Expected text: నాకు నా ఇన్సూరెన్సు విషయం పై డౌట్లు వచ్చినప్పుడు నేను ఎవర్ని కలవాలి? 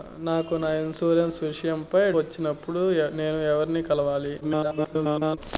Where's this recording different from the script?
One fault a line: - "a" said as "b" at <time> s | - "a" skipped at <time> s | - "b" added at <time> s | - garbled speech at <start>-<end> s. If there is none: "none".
- "డౌట్లు" skipped at 2.1 s
- garbled speech at 4.4-5.4 s